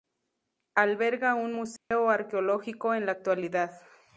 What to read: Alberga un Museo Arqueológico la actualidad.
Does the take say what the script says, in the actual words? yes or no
no